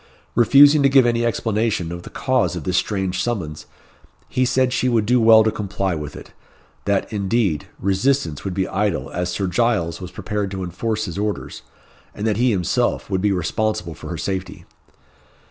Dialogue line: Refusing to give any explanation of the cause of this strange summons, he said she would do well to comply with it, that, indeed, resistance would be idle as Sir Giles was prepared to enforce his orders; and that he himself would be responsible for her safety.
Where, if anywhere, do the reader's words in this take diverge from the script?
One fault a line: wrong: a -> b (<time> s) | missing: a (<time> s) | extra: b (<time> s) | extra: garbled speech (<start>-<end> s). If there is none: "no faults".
no faults